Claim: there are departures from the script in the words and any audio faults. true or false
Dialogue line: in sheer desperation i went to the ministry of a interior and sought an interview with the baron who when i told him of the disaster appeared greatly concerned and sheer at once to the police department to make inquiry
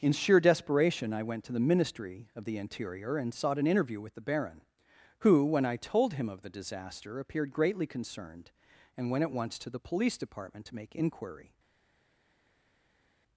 true